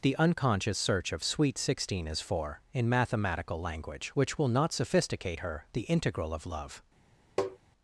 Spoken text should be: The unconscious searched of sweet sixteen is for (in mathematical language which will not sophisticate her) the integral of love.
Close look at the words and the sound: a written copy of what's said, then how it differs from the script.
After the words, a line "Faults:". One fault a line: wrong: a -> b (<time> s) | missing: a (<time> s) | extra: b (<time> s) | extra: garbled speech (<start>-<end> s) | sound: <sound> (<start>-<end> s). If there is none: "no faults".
The unconscious search of sweet sixteen is for (in mathematical language which will not sophisticate her) the integral of love.
Faults:
wrong: searched -> search (0.8 s)
sound: tap (7.4-7.6 s)